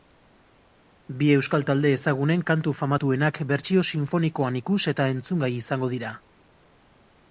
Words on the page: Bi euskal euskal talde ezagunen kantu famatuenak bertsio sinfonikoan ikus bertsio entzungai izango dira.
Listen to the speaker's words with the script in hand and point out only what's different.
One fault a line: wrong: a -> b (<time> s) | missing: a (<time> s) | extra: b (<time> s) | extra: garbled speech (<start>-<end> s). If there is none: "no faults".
missing: euskal (1.6 s)
wrong: bertsio -> eta (5.0 s)